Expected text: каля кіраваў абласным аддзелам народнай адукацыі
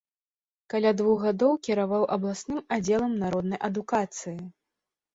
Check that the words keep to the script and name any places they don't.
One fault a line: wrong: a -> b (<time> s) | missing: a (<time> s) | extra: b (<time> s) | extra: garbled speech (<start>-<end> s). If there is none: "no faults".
extra: двух гадоў (1.0 s)